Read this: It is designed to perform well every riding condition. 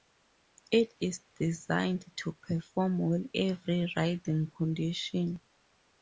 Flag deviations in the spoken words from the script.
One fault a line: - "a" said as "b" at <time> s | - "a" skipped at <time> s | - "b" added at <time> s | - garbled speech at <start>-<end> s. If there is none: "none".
none